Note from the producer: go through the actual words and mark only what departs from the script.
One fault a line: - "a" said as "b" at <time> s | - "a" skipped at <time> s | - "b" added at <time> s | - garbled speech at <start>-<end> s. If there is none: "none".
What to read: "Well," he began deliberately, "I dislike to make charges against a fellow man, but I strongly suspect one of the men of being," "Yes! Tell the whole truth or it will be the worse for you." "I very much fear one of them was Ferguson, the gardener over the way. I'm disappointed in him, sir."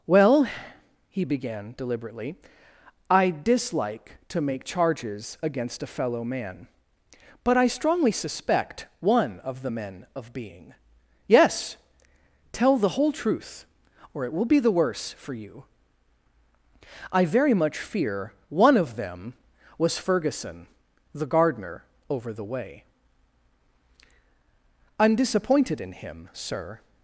none